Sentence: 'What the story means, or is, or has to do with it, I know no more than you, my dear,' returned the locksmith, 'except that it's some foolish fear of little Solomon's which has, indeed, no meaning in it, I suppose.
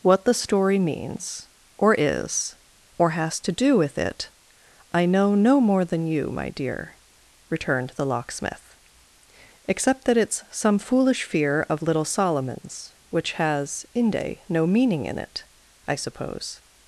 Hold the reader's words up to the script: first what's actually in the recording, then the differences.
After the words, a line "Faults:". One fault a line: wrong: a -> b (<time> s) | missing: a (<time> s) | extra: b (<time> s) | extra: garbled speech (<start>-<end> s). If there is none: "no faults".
'What the story means, or is, or has to do with it, I know no more than you, my dear,' returned the locksmith, 'except that it's some foolish fear of little Solomon's which has, inde, no meaning in it, I suppose.
Faults:
wrong: indeed -> inde (13.9 s)